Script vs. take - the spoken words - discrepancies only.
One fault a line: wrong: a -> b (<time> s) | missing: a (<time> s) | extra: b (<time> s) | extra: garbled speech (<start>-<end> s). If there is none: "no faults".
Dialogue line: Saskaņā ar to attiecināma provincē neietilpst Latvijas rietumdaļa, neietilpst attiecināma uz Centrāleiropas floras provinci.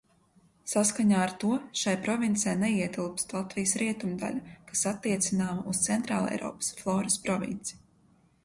wrong: attiecināma -> šai (1.8 s)
wrong: neietilpst -> kas (4.7 s)